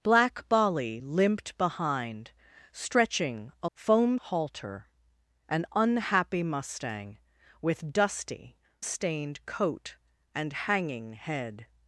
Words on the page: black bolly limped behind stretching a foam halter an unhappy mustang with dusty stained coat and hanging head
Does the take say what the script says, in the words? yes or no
yes